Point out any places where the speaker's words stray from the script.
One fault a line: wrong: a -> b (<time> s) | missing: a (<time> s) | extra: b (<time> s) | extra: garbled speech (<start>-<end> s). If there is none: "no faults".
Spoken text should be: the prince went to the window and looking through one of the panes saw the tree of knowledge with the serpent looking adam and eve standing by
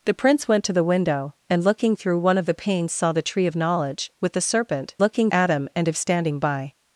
no faults